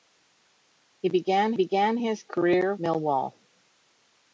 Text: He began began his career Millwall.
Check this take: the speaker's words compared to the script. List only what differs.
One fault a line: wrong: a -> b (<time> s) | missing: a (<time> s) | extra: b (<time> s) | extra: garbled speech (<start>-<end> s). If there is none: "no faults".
no faults